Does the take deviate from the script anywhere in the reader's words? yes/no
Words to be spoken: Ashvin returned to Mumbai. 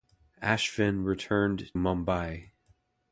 yes